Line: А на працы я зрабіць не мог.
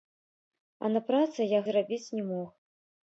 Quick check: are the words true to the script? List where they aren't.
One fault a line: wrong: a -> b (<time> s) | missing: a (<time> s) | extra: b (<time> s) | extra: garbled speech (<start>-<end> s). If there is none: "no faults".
no faults